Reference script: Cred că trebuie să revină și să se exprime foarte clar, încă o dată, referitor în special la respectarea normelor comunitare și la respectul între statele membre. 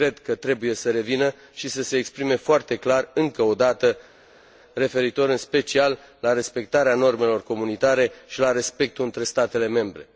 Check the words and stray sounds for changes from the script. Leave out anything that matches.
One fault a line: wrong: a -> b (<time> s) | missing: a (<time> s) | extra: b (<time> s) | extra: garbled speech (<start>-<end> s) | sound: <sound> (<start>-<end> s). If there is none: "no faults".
no faults